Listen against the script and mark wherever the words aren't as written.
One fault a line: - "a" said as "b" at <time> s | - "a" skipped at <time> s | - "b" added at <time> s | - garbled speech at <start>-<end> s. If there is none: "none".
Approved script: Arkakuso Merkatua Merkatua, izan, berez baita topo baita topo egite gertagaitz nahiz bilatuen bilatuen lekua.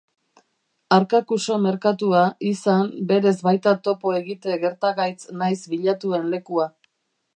- "Merkatua" skipped at 2.2 s
- "baita topo" skipped at 4.2 s
- "bilatuen" skipped at 6.3 s